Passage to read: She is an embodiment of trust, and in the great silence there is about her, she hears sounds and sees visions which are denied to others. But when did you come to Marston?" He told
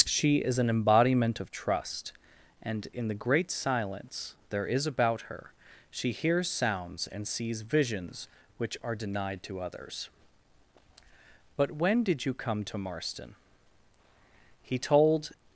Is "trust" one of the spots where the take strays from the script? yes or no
no